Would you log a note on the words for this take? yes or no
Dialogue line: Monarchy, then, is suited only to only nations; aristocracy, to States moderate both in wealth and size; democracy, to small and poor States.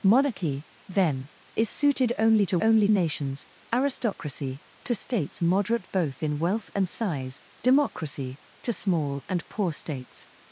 no